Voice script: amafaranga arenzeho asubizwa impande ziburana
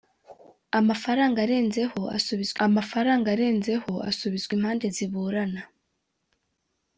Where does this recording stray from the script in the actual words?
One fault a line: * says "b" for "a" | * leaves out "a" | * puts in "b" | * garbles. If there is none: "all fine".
* puts in "amafaranga arenzeho asubizwa"